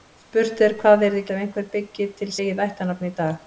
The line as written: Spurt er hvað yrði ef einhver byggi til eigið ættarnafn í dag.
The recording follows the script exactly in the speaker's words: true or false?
true